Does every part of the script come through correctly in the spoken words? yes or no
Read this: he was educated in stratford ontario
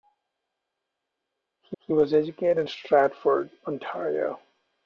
no